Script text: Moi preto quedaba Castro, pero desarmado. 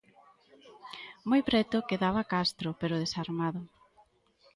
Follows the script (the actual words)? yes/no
yes